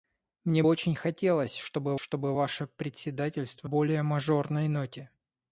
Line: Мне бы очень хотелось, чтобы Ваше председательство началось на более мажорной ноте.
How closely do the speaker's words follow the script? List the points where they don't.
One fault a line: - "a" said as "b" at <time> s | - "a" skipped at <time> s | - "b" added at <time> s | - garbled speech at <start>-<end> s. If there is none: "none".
- "бы" skipped at 0.6 s
- "чтобы" added at 1.9 s
- "началось на" skipped at 3.7 s